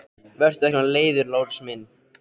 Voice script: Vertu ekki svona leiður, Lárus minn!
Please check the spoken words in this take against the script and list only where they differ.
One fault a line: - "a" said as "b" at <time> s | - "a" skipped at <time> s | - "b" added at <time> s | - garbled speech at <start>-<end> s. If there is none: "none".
- "ekki" skipped at 0.7 s